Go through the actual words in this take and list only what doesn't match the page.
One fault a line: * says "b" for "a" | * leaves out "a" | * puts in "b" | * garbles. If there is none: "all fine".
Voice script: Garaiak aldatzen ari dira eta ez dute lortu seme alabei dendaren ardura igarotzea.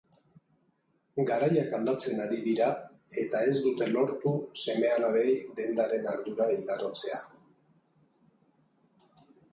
all fine